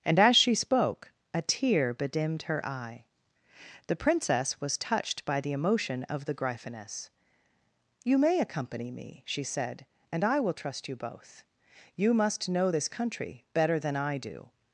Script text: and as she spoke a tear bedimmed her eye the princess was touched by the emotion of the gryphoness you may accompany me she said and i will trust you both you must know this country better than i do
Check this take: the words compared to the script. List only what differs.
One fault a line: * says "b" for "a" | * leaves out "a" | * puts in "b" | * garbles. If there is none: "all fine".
all fine